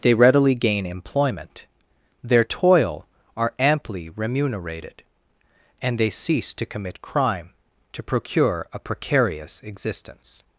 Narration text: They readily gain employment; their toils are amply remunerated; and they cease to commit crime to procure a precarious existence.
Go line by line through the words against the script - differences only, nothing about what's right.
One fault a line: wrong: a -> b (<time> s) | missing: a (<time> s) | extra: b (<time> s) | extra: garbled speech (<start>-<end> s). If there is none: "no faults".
wrong: toils -> toil (2.4 s)